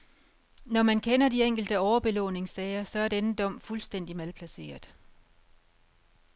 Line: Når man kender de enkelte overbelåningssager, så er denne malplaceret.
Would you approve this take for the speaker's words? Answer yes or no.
no